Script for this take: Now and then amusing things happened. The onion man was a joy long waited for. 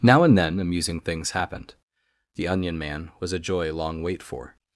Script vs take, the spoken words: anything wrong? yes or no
yes